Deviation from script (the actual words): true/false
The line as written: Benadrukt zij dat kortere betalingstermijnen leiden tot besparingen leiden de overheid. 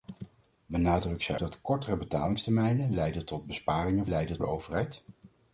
false